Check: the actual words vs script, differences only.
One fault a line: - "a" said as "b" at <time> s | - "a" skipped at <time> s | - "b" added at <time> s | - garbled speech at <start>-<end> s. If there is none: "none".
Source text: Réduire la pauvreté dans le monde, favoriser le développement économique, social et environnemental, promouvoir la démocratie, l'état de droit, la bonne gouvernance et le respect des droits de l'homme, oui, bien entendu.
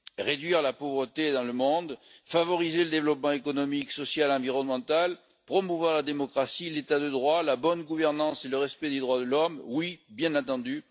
none